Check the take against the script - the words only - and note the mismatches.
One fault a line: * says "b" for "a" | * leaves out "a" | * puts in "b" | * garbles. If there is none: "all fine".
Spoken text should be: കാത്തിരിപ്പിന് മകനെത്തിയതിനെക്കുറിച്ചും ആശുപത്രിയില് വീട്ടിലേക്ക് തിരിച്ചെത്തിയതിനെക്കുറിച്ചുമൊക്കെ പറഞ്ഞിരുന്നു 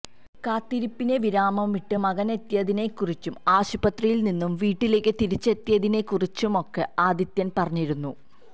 * puts in "വിരാമമിട്ട്"
* puts in "നിന്നും"
* puts in "ആദിത്യന്"